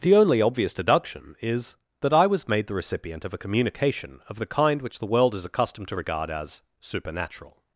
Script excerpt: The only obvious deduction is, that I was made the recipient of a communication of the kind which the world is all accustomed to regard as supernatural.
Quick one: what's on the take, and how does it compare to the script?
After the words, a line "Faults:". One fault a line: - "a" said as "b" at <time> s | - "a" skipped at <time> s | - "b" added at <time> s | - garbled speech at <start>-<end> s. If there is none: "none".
The only obvious deduction is, that I was made the recipient of a communication of the kind which the world is accustomed to regard as supernatural.
Faults:
- "all" skipped at 5.5 s